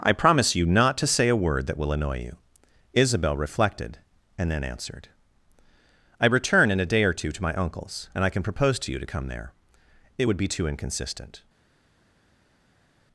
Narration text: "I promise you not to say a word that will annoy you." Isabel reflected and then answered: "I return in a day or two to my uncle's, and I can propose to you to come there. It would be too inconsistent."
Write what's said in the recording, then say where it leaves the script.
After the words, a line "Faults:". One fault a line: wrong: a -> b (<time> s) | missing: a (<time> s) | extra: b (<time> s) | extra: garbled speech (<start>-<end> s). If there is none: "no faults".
"I promise you not to say a word that will annoy you." Isabel reflected and then answered: "I return in a day or two to my uncle's, and I can propose to you to come there. It would be too inconsistent."
Faults:
no faults